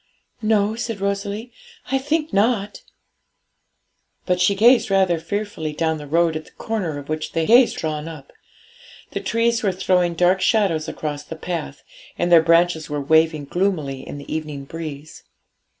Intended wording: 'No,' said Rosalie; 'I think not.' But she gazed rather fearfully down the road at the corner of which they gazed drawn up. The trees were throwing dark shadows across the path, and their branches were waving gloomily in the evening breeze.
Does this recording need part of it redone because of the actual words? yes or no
no